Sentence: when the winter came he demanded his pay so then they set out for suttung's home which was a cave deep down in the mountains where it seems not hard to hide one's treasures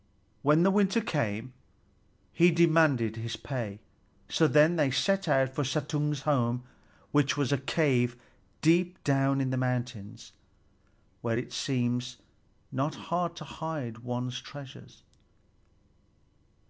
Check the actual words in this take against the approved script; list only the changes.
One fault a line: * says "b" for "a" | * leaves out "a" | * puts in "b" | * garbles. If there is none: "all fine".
all fine